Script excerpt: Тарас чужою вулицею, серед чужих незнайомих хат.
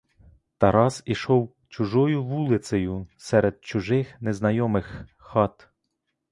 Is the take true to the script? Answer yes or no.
no